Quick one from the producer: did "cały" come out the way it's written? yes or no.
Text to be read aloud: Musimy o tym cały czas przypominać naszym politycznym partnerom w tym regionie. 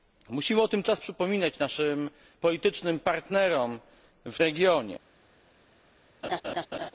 no